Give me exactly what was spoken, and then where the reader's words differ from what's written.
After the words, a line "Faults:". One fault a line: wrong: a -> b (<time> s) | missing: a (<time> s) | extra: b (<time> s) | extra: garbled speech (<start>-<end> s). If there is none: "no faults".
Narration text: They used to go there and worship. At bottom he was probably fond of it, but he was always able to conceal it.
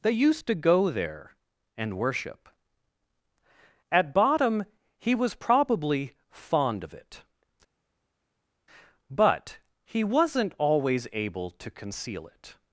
They used to go there and worship. At bottom he was probably fond of it, but he wasn't always able to conceal it.
Faults:
wrong: was -> wasn't (10.0 s)